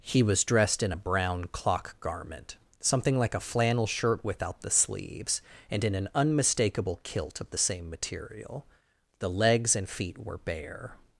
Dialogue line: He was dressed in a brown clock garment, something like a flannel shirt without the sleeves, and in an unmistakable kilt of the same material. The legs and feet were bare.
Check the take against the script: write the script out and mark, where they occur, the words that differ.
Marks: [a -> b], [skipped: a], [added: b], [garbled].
He was dressed in a brown clock garment, something like a flannel shirt without the sleeves, and in an unmistakable kilt of the same material. The legs and feet were bare.